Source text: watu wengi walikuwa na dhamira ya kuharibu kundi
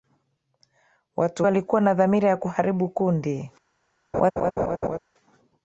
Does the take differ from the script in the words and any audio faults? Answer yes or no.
yes